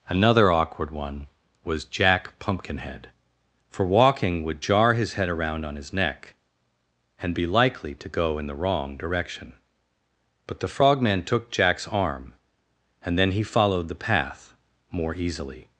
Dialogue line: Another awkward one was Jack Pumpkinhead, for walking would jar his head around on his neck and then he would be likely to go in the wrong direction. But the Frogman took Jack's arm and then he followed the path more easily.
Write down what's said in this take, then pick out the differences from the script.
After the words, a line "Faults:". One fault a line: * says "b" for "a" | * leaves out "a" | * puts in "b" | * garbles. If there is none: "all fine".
Another awkward one was Jack Pumpkinhead, for walking would jar his head around on his neck and be likely to go in the wrong direction. But the Frogman took Jack's arm and then he followed the path more easily.
Faults:
* leaves out "then he would"